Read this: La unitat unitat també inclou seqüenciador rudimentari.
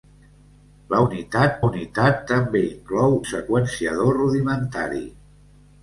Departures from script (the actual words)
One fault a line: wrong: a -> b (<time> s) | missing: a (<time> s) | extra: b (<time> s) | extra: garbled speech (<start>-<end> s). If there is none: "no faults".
no faults